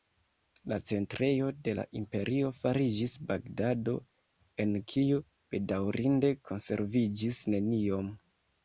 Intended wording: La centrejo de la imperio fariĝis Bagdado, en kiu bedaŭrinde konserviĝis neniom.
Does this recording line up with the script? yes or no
yes